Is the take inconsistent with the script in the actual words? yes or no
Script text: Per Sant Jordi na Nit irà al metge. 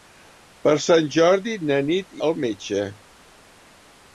yes